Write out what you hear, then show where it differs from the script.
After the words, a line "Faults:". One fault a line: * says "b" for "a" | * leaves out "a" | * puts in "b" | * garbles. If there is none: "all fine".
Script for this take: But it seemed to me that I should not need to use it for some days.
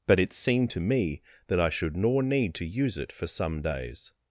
But it seemed to me that I should nor need to use it for some days.
Faults:
* says "nor" for "not"